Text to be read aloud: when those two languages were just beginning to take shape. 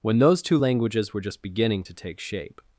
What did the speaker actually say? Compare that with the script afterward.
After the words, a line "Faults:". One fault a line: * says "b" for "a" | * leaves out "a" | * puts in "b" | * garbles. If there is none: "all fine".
when those two languages were just beginning to take shape.
Faults:
all fine